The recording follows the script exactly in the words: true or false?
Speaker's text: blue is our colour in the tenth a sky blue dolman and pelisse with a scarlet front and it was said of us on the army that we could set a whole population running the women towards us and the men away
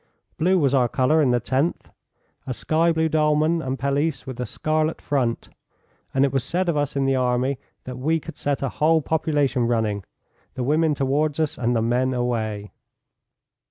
false